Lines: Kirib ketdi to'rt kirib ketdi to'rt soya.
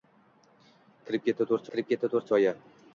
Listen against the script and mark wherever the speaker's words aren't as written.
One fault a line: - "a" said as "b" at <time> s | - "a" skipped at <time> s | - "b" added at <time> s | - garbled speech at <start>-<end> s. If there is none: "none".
none